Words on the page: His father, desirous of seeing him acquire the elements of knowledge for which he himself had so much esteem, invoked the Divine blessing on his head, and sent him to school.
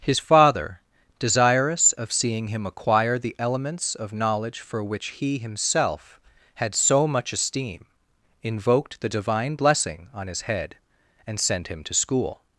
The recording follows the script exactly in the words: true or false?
true